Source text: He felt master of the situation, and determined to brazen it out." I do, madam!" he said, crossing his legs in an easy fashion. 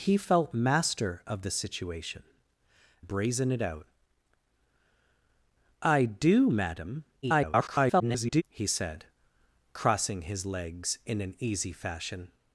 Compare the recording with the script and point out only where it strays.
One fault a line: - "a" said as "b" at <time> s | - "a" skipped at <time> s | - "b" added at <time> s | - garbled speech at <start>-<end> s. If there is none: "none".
- "and determined to" skipped at 2.2 s
- garbled speech at 7.2-8.4 s